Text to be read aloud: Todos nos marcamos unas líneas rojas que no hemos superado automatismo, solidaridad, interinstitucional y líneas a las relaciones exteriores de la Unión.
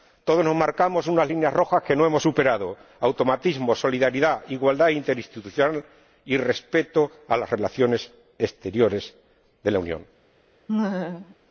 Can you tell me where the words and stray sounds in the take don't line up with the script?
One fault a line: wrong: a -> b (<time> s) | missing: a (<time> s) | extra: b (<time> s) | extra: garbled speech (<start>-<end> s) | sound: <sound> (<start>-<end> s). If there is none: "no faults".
extra: igualdad (4.5 s)
wrong: líneas -> respeto (6.4 s)
sound: laugh (10.7-11.4 s)